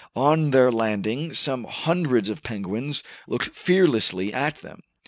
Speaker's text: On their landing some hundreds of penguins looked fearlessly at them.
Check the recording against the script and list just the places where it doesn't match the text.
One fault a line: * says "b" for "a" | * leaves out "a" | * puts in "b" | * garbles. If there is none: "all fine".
all fine